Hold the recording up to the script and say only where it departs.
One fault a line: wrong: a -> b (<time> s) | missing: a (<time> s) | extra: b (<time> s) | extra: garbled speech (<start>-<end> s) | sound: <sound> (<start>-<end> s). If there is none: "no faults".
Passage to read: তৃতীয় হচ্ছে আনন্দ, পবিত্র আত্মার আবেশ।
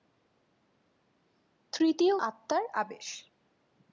missing: হচ্ছে আনন্দ পবিত্র (2.1 s)